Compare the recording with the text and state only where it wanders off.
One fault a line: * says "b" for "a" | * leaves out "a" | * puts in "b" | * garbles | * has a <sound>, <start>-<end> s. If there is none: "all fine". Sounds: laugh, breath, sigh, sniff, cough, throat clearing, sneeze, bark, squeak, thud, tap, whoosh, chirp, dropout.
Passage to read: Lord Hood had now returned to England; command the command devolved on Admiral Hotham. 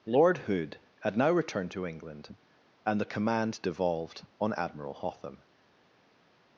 * says "and" for "command"